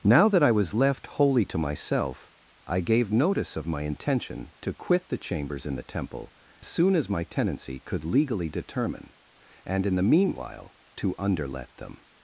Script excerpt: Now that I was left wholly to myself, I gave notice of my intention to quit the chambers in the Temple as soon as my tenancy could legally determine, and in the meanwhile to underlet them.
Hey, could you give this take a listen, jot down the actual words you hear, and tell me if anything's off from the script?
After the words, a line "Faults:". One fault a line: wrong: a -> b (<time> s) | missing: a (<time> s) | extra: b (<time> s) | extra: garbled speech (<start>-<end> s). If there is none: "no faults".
Now that I was left wholly to myself, I gave notice of my intention to quit the chambers in the Temple soon as my tenancy could legally determine, and in the meanwhile to underlet them.
Faults:
missing: as (6.3 s)